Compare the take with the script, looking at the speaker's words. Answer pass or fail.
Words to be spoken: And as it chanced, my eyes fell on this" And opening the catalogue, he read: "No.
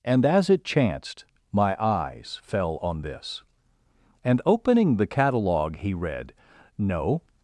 pass